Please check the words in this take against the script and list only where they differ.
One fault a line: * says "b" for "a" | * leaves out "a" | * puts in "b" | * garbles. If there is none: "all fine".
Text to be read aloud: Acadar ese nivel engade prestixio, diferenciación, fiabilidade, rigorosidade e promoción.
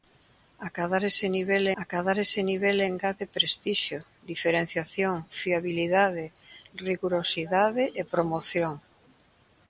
* puts in "acadar ese nivel"